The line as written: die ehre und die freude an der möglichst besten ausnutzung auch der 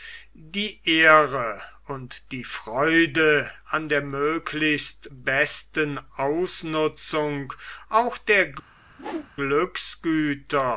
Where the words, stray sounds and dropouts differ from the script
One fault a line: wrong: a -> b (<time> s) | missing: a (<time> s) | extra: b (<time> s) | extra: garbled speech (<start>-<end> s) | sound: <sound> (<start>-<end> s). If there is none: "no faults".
sound: whoosh (8.9-9.3 s)